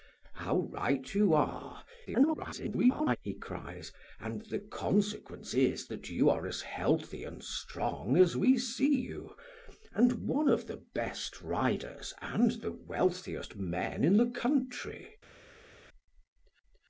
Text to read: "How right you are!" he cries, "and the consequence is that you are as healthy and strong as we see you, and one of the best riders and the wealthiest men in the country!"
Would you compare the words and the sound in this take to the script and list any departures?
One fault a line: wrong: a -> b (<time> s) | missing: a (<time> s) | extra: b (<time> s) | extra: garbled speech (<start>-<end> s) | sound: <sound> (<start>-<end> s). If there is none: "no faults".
extra: garbled speech (2.1-3.2 s)